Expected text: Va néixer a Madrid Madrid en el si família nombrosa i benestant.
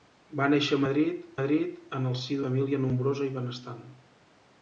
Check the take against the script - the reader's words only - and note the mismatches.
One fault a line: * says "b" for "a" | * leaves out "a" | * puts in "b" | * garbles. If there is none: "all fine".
all fine